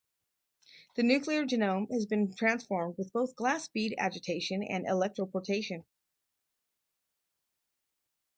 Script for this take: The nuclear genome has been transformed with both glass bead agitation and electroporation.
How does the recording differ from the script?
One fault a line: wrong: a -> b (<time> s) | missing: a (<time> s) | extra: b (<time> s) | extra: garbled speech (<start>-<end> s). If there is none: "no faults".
no faults